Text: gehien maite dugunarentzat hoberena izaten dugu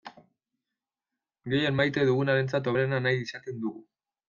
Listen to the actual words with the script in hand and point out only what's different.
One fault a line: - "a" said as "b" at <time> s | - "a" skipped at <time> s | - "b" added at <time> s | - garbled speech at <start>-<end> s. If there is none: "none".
- "nahi" added at 3.1 s